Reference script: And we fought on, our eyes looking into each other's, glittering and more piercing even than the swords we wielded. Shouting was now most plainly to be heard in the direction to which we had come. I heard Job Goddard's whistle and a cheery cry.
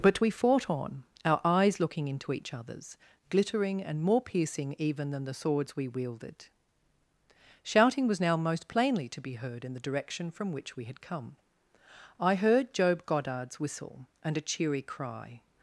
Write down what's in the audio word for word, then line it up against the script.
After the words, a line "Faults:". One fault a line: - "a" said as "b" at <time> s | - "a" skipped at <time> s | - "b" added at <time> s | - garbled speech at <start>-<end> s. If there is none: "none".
But we fought on, our eyes looking into each other's, glittering and more piercing even than the swords we wielded. Shouting was now most plainly to be heard in the direction from which we had come. I heard Job Goddard's whistle and a cheery cry.
Faults:
- "And" said as "But" at 0.0 s
- "to" said as "from" at 10.3 s